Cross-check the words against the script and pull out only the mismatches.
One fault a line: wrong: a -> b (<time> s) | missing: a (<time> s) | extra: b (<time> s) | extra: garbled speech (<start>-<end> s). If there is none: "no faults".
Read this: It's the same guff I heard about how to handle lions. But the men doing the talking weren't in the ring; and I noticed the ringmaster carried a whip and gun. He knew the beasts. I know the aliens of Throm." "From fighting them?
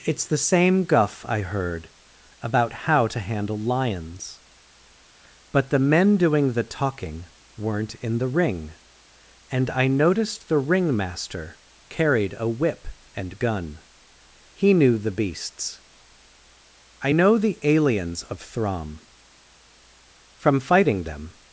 no faults